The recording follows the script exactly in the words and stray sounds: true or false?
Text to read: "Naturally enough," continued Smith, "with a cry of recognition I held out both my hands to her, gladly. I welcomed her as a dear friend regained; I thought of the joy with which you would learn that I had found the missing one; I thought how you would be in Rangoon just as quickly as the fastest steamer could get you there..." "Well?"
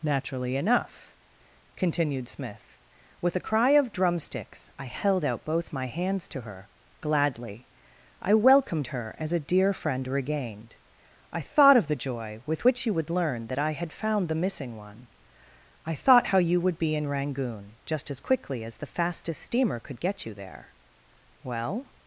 false